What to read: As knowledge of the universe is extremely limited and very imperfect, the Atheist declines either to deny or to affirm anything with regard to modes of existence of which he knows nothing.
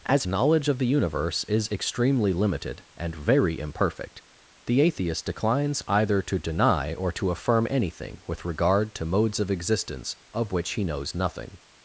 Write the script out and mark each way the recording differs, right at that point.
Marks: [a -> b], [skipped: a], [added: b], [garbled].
As knowledge of the universe is extremely limited and very imperfect, the Atheist declines either to deny or to affirm anything with regard to modes of existence of which he knows nothing.